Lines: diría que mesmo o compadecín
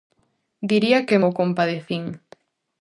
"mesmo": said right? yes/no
no